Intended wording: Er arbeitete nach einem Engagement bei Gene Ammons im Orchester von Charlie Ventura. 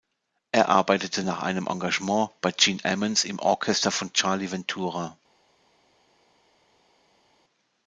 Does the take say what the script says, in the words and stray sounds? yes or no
yes